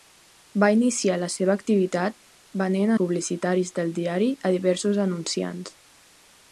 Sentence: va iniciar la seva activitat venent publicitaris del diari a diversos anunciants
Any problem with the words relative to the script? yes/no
no